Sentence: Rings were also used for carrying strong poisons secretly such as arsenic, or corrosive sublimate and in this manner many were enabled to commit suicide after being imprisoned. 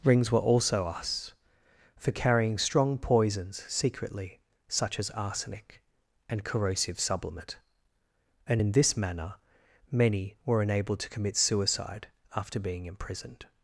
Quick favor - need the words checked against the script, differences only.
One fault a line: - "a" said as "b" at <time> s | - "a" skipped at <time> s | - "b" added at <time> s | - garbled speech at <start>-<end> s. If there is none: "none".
- "used" said as "us" at 0.8 s
- "or" said as "and" at 6.3 s